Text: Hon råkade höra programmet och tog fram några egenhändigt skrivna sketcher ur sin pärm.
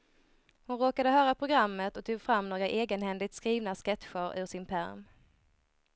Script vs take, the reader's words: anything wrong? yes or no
no